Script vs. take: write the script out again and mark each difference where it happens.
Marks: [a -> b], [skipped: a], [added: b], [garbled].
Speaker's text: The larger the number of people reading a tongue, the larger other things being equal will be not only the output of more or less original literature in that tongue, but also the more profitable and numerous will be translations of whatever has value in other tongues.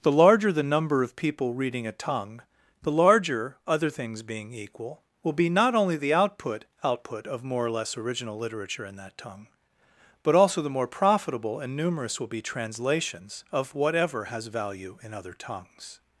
The larger the number of people reading a tongue, the larger other things being equal will be not only the output [added: output] of more or less original literature in that tongue, but also the more profitable and numerous will be translations of whatever has value in other tongues.